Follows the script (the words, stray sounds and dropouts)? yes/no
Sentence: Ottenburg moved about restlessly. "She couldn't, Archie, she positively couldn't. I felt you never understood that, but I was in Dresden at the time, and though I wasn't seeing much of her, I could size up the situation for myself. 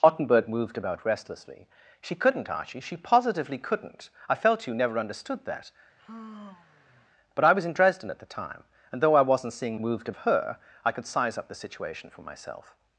no